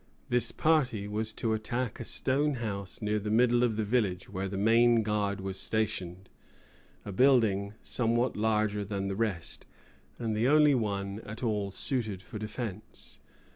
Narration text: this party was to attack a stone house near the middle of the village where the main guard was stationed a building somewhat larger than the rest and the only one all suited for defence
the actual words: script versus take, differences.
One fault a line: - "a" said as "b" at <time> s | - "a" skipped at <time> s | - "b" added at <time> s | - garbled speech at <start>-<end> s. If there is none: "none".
- "at" added at 11.2 s